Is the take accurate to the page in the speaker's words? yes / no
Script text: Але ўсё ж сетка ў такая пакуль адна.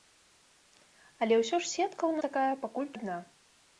yes